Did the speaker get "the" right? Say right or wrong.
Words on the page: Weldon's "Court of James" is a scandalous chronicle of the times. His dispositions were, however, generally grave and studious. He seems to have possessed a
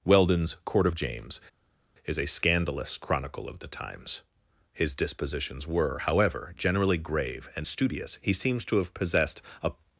right